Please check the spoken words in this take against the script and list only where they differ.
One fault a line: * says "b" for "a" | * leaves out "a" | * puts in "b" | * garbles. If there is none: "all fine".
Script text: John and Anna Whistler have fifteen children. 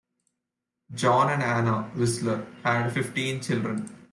* says "had" for "have"